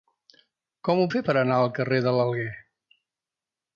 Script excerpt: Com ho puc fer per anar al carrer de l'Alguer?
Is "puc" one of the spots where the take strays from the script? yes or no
yes